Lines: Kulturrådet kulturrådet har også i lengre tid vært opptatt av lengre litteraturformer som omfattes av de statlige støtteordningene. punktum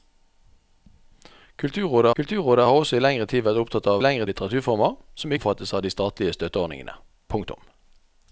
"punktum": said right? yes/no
yes